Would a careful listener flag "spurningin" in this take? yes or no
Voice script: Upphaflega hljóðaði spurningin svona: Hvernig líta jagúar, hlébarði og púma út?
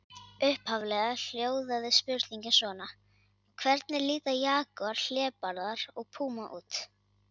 no